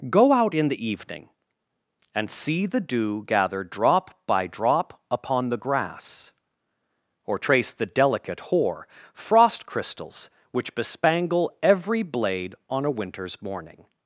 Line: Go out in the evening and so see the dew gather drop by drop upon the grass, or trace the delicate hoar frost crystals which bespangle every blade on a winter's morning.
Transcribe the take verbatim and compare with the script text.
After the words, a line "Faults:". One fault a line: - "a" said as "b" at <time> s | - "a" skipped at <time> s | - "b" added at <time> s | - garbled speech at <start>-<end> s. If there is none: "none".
Go out in the evening and see the dew gather drop by drop upon the grass, or trace the delicate hoar frost crystals which bespangle every blade on a winter's morning.
Faults:
- "so" skipped at 2.3 s